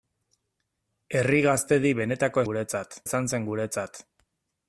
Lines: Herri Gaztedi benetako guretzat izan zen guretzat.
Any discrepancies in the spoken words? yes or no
no